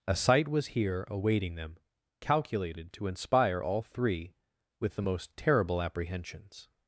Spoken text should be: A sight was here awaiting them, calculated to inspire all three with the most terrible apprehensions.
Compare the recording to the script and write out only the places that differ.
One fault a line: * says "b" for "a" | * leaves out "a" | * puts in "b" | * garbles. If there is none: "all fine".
all fine